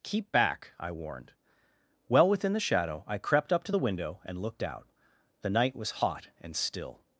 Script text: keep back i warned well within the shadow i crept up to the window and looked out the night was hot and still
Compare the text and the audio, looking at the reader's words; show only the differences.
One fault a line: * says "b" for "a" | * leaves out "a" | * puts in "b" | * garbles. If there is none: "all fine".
all fine